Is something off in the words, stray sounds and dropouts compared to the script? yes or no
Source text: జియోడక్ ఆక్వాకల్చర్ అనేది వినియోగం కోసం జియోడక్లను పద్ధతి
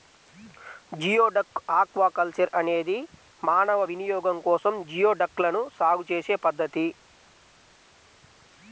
yes